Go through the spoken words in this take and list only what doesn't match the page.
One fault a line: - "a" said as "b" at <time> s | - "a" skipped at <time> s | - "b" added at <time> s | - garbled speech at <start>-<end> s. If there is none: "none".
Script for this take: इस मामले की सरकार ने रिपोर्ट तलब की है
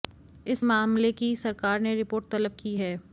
none